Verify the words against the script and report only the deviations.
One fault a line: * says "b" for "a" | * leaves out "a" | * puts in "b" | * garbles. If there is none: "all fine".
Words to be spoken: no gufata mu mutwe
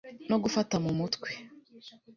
all fine